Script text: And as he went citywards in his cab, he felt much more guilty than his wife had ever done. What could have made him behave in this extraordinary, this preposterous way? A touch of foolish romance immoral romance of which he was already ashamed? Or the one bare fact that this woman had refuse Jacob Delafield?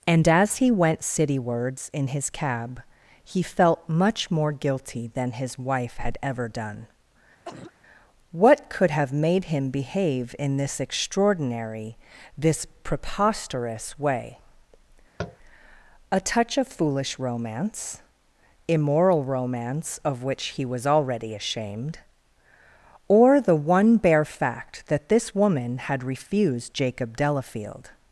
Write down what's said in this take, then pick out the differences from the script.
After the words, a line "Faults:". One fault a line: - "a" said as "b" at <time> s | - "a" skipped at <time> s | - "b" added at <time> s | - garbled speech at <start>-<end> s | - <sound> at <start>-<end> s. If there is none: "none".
And as he went citywards in his cab, he felt much more guilty than his wife had ever done. What could have made him behave in this extraordinary, this preposterous way? A touch of foolish romance immoral romance of which he was already ashamed? Or the one bare fact that this woman had refused Jacob Delafield?
Faults:
- cough at 7.4-7.7 s
- tap at 15.2-15.4 s
- "refuse" said as "refused" at 26.0 s